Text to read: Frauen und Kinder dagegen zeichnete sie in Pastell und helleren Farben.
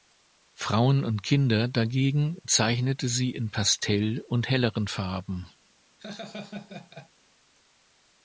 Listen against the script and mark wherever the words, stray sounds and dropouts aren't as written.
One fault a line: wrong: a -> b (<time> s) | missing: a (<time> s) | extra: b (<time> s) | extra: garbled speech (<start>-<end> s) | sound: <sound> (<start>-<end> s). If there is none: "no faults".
sound: laugh (6.0-7.1 s)